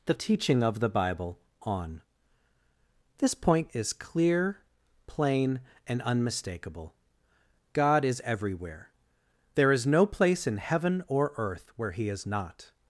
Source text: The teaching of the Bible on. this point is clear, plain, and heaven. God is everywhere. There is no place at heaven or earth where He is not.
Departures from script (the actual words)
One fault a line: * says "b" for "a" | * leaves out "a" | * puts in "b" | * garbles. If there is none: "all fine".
* says "unmistakable" for "heaven"
* says "in" for "at"